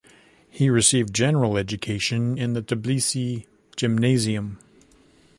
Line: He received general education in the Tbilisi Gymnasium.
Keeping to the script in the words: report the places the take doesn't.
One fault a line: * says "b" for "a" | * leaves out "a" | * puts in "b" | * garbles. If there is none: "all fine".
all fine